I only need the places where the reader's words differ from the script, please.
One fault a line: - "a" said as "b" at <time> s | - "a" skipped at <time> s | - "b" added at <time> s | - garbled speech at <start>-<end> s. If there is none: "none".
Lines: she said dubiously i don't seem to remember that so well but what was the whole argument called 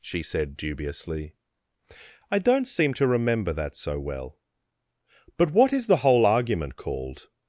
- "was" said as "is" at 5.7 s